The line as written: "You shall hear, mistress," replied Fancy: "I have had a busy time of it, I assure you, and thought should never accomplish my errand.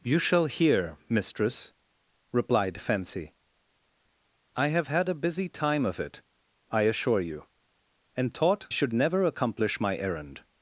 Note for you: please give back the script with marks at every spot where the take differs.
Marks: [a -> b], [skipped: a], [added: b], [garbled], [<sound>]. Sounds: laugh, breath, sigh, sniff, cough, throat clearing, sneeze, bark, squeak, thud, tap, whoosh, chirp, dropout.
"You shall hear, mistress," replied Fancy: "I have had a busy time of it, I assure you, and thought should never accomplish my errand.